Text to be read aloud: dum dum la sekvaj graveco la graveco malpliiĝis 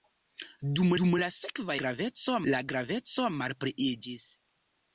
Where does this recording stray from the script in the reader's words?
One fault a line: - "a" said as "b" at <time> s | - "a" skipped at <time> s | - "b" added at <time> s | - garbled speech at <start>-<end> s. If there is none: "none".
none